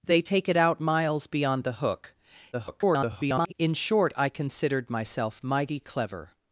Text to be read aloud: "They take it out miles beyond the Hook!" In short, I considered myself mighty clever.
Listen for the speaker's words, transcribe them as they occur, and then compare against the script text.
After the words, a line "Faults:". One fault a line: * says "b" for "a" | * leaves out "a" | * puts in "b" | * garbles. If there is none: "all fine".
"They take it out miles beyond the Hook!" [garbled] In short, I considered myself mighty clever.
Faults:
* garbles